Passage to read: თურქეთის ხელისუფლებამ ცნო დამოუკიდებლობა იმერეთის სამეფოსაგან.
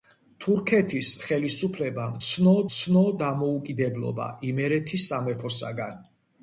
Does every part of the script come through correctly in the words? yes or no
no